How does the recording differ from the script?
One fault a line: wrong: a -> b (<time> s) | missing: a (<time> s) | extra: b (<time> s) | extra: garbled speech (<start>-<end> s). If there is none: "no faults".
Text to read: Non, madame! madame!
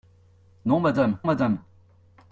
no faults